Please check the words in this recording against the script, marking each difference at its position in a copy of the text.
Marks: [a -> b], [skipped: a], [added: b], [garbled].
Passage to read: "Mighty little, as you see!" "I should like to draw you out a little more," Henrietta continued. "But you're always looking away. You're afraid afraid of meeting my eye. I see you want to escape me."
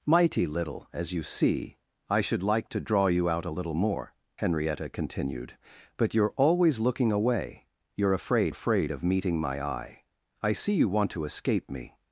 "Mighty little, as you see!" "I should like to draw you out a little more," Henrietta continued. "But you're always looking away. You're afraid afraid of meeting my eye. I see you want to escape me."